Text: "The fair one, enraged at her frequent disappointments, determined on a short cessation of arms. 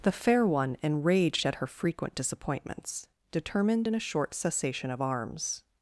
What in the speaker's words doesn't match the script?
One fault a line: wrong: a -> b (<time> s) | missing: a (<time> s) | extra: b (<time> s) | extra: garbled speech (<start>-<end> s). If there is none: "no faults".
wrong: on -> in (3.8 s)